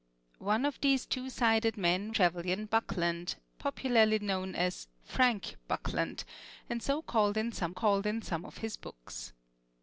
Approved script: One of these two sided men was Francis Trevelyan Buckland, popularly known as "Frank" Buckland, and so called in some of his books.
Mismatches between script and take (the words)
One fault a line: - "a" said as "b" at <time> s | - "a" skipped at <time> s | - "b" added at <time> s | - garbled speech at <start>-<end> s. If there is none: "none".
- "was Francis" skipped at 2.1 s
- "called in some" added at 7.7 s